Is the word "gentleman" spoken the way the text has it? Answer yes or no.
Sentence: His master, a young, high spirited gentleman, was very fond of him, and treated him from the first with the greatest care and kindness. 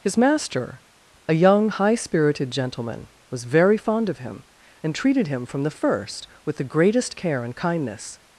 yes